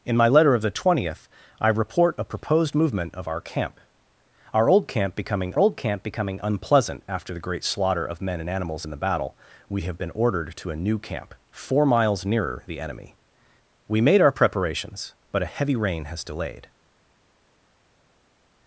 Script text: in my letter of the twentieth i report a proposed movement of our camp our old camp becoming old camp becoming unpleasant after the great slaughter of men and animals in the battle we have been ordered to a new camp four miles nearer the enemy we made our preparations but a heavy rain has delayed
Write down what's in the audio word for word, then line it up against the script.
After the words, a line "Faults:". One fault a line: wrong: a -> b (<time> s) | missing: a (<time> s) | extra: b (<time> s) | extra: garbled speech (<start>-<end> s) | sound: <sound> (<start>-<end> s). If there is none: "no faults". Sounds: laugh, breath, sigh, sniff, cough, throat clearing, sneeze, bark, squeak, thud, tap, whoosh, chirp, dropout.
in my letter of the twentieth i report a proposed movement of our camp our old camp becoming old camp becoming unpleasant after the great slaughter of men and animals in the battle we have been ordered to a new camp four miles nearer the enemy we made our preparations but a heavy rain has delayed
Faults:
no faults